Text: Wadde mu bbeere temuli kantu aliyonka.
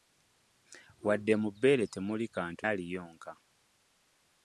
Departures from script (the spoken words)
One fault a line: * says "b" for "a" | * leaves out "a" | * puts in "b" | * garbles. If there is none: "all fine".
all fine